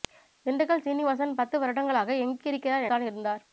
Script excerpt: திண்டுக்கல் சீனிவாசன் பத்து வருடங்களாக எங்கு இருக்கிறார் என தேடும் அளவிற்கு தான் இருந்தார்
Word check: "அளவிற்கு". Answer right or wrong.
wrong